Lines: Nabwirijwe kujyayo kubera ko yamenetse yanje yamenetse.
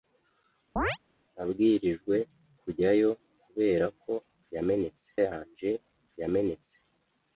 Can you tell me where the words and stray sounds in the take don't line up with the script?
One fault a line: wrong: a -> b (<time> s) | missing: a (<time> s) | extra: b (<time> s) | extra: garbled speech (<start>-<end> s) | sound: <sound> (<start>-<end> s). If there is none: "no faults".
sound: chirp (0.8-1.0 s)